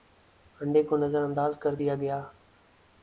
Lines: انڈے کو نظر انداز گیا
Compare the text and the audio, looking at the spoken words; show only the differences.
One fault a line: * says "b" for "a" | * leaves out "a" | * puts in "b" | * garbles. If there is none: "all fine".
* puts in "کر دیا"